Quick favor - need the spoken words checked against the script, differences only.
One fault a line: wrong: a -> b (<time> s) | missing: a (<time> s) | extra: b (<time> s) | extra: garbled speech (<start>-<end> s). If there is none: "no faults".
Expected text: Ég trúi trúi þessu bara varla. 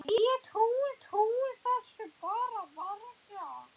no faults